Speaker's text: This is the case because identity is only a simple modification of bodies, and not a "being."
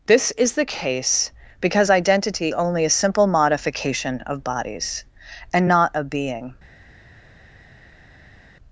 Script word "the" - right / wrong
right